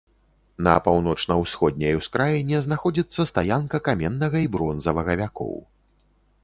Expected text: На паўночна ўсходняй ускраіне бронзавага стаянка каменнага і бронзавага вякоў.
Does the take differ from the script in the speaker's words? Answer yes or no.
yes